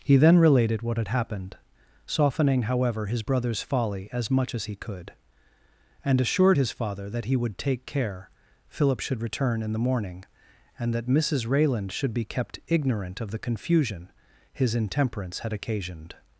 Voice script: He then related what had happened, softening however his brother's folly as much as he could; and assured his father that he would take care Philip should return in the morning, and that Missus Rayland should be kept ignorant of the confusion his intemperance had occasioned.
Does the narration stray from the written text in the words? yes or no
no